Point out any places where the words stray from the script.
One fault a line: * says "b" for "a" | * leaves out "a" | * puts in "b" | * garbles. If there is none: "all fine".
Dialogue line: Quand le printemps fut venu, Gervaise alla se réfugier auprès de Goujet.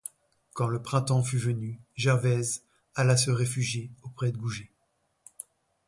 all fine